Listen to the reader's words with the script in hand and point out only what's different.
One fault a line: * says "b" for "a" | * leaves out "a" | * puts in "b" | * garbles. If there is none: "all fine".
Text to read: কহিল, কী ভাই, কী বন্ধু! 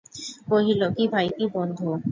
all fine